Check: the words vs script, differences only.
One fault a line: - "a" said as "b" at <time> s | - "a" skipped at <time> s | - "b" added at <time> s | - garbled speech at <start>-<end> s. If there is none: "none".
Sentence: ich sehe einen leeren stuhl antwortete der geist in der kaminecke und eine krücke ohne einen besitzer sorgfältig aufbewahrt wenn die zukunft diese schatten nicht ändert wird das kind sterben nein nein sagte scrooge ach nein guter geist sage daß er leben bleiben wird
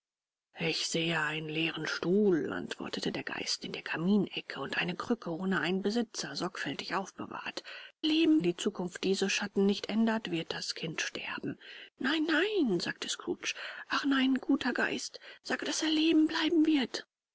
- "wenn" said as "leben" at 8.0 s